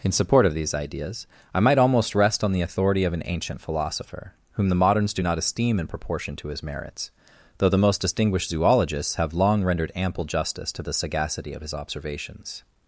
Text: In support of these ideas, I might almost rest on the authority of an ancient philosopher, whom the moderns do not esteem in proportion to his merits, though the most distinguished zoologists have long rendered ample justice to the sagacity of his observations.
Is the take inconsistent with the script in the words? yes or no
no